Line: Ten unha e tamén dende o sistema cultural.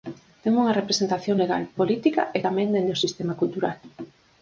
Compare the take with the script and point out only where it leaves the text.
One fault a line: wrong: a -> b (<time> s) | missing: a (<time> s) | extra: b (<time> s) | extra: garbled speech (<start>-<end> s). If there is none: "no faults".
extra: representación legal política (0.8 s)